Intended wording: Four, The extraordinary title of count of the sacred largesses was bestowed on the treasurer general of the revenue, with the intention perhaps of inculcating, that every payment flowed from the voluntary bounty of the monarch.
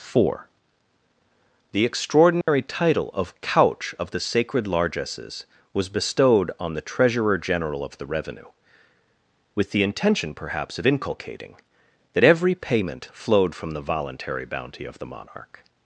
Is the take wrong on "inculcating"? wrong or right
right